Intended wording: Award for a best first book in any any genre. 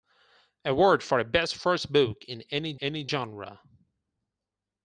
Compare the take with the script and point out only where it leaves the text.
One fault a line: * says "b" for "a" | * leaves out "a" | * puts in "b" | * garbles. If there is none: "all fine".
all fine